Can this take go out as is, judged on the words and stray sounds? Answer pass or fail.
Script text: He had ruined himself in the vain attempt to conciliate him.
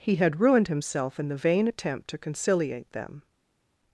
fail